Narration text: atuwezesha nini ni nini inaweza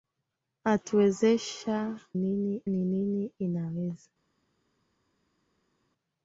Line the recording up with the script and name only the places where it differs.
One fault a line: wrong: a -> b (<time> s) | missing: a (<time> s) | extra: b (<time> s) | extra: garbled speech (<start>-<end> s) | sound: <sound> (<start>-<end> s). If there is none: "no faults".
no faults